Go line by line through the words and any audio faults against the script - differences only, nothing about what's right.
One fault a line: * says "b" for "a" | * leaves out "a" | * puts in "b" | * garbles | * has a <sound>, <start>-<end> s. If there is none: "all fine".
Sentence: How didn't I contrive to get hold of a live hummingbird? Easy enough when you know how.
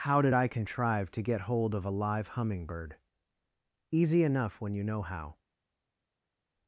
* says "did" for "didn't"